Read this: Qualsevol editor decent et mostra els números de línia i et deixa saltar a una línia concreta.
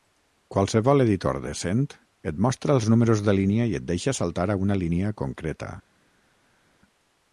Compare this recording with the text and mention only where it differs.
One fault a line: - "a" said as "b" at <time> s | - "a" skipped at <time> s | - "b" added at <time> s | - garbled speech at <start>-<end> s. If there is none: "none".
none